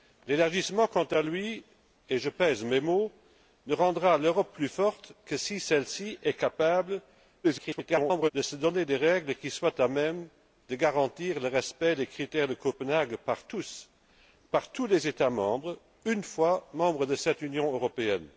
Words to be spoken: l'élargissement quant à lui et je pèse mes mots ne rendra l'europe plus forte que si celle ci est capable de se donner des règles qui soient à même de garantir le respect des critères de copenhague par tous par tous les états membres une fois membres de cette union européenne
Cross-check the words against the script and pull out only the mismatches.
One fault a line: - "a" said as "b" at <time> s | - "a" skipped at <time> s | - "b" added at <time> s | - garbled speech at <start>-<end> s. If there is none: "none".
- garbled speech at 7.4-8.3 s